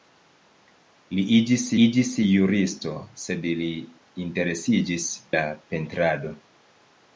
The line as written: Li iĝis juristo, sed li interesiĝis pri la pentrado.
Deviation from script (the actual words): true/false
true